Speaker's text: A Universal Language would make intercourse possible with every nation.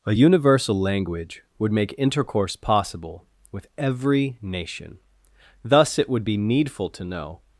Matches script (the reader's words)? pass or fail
fail